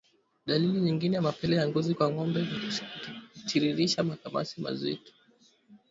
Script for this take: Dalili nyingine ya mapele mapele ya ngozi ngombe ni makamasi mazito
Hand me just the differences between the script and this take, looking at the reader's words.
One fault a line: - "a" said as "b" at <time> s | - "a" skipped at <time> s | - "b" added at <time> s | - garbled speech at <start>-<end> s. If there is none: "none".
- "mapele" skipped at 1.6 s
- "kwa" added at 1.9 s
- "kutiririsha" added at 3.3 s